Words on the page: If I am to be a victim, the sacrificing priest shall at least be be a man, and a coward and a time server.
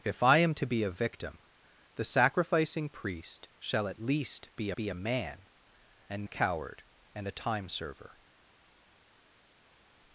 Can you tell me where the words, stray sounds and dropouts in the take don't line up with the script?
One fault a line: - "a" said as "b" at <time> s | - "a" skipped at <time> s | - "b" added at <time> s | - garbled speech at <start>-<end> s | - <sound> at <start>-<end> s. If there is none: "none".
none